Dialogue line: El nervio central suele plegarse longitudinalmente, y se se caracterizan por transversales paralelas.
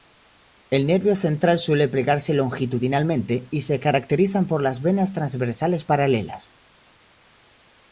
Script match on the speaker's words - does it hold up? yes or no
no